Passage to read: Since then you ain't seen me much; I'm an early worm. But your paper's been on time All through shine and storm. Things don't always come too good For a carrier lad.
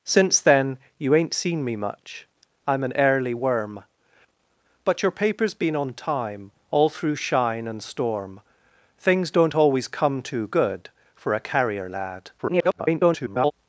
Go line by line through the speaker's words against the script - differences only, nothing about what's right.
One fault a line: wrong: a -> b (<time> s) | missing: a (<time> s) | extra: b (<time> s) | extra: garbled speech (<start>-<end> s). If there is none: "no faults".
extra: garbled speech (12.4-13.5 s)